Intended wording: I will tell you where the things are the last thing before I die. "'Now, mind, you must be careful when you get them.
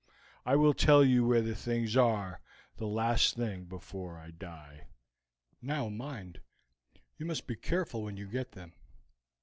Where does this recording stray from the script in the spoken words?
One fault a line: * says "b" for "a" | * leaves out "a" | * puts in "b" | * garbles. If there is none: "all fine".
all fine